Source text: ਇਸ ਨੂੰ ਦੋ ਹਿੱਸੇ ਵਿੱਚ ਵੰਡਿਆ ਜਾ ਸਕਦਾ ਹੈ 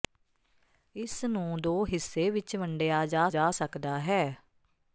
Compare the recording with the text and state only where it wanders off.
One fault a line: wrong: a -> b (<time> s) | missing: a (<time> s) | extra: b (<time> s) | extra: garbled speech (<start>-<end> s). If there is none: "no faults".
extra: ਜਾ (3.3 s)